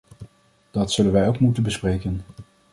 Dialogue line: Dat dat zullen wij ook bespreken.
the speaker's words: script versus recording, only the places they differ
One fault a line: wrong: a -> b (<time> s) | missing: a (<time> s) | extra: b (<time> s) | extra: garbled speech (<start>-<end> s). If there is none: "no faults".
missing: dat (0.9 s)
extra: moeten (1.4 s)